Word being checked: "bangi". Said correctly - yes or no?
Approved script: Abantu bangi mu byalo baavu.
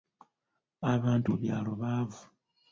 no